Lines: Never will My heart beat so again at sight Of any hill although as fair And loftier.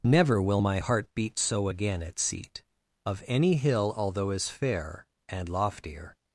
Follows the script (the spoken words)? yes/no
no